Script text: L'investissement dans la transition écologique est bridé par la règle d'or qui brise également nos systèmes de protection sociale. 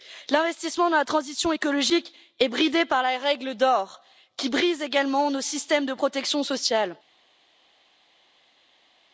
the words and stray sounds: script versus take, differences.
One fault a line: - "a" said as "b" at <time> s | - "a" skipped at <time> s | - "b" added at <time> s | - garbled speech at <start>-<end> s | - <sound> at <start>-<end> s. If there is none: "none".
none